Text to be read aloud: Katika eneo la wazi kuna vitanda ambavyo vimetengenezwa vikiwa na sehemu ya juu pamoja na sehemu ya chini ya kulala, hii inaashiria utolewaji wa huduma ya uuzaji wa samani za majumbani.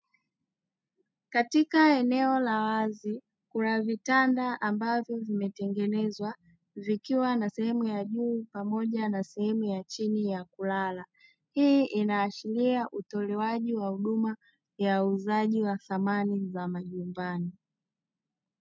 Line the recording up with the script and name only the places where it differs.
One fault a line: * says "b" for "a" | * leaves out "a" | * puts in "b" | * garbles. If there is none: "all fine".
all fine